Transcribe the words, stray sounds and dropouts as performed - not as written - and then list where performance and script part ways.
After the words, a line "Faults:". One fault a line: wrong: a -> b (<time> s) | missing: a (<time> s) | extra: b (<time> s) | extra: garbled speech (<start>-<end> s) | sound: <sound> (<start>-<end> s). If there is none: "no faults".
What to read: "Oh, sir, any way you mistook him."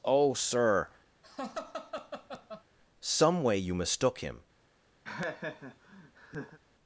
"Oh, sir, some way you mistook him."
Faults:
sound: laugh (1.2-2.6 s)
wrong: any -> some (3.0 s)
sound: laugh (5.0-6.6 s)